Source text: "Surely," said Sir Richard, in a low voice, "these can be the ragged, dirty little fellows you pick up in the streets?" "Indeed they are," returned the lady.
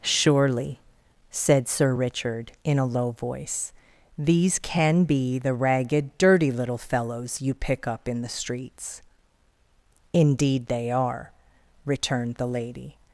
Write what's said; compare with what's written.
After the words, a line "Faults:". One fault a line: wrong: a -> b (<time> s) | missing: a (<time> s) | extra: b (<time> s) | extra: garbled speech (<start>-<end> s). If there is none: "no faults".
"Surely," said Sir Richard, in a low voice, "these can be the ragged, dirty little fellows you pick up in the streets?" "Indeed they are," returned the lady.
Faults:
no faults